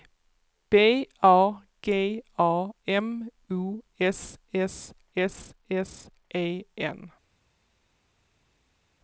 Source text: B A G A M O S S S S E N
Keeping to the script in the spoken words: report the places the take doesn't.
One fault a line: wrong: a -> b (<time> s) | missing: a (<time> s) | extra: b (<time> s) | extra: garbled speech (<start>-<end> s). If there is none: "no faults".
no faults